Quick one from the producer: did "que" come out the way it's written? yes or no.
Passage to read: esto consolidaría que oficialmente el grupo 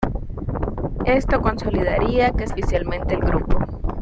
yes